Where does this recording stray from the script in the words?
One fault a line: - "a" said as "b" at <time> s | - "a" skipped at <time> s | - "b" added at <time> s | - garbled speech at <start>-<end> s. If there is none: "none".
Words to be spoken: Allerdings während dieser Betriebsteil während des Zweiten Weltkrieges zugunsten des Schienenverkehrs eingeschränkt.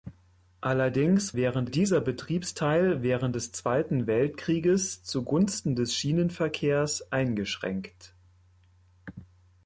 none